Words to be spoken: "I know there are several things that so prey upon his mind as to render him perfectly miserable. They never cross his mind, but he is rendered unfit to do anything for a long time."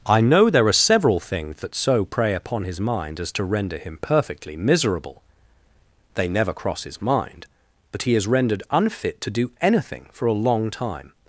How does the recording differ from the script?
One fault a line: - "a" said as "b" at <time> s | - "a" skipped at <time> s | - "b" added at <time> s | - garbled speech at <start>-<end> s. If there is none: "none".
none